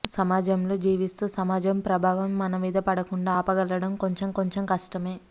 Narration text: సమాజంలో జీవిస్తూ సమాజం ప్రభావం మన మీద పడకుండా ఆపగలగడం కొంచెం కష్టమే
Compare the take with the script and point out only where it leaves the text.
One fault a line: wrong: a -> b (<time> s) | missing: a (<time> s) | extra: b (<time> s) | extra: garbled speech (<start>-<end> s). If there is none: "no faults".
extra: కొంచెం (4.3 s)